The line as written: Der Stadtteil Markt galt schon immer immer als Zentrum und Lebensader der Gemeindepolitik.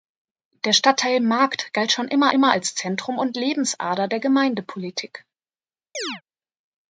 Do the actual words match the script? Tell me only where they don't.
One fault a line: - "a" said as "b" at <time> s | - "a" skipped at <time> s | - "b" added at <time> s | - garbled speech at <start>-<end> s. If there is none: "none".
none